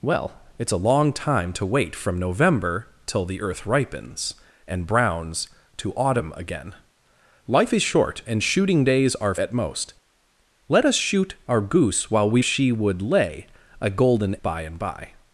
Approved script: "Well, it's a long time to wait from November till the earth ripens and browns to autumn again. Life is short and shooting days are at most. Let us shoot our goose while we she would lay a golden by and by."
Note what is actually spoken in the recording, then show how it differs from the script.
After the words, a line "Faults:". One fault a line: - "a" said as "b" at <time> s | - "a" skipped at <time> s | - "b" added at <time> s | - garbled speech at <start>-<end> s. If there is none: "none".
"Well, it's a long time to wait from November till the earth ripens and browns to autumn again. Life is short and shooting days are at most. Let us shoot our goose while we she would lay a golden by and by."
Faults:
none